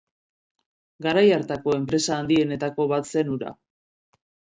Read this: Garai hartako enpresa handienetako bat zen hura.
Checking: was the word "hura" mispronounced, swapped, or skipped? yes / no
no